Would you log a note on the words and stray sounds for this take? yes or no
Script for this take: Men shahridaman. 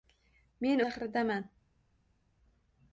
no